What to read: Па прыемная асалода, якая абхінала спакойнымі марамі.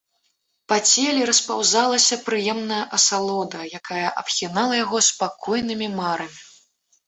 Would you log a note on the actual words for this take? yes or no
yes